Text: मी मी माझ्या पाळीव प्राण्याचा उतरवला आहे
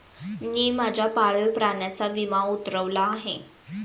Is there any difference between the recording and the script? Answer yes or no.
yes